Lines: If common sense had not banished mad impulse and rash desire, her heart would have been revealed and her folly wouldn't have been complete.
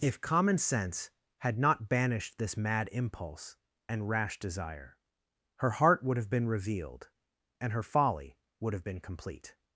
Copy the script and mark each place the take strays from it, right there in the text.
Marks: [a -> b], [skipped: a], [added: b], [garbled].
If common sense had not banished [added: this] mad impulse and rash desire, her heart would have been revealed and her folly [wouldn't -> would] have been complete.